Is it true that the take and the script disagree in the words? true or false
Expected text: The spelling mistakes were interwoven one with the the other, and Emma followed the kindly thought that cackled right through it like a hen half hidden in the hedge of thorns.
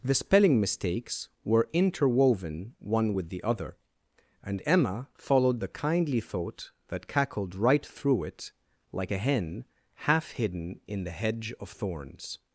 true